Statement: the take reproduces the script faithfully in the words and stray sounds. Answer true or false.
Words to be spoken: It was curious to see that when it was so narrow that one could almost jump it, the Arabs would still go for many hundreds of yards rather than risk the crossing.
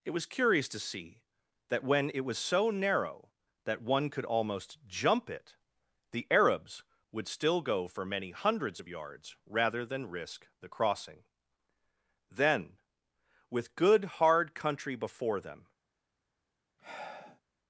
false